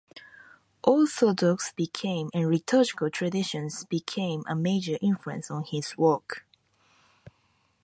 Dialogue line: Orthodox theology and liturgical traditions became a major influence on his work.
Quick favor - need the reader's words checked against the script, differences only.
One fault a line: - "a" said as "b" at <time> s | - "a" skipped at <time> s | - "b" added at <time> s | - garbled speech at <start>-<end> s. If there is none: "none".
- "theology" said as "became" at 1.7 s